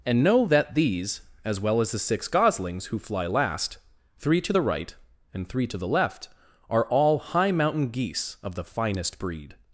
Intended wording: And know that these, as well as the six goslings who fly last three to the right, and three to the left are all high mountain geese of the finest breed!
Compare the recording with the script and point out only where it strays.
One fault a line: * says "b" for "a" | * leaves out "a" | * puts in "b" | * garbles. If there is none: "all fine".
all fine